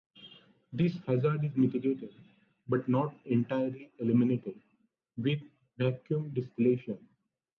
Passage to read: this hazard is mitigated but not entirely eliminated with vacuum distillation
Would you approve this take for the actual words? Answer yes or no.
yes